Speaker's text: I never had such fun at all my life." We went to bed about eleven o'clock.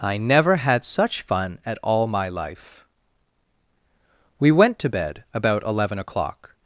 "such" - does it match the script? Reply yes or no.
yes